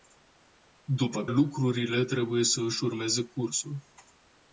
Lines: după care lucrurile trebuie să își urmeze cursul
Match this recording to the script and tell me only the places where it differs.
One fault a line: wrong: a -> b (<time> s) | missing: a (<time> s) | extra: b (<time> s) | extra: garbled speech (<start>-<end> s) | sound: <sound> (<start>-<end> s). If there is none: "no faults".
missing: care (1.2 s)